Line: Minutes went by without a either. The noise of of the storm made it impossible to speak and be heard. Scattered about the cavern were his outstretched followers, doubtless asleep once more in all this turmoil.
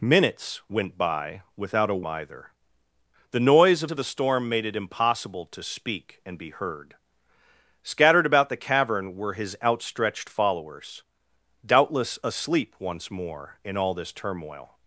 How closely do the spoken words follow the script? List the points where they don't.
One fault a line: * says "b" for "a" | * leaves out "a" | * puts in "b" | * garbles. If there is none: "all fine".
all fine